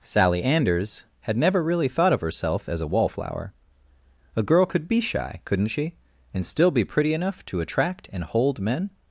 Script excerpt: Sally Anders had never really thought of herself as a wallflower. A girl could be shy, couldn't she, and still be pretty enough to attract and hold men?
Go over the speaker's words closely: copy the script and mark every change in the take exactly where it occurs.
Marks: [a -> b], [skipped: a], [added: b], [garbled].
Sally Anders had never really thought of herself as a wallflower. A girl could be shy, couldn't she, and still be pretty enough to attract and hold men?